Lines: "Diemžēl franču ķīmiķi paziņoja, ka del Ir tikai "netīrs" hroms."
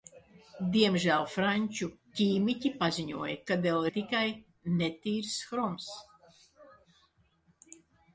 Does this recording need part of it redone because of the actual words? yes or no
no